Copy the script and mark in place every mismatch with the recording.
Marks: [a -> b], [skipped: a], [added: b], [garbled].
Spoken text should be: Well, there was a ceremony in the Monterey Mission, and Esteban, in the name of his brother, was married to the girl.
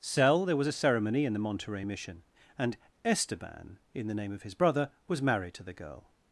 [Well, -> Cell] there was a ceremony in the Monterey Mission, and Esteban, in the name of his brother, was married to the girl.